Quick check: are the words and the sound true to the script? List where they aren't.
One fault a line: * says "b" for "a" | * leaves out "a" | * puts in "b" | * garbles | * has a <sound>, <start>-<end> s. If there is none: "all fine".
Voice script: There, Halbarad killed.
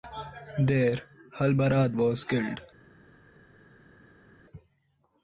* puts in "was"